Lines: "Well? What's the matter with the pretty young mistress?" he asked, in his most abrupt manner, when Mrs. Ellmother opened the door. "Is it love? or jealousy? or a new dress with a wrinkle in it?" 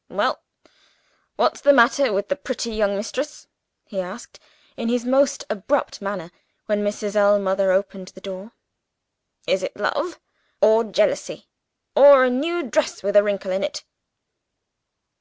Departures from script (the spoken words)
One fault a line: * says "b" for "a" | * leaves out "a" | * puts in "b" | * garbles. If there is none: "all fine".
all fine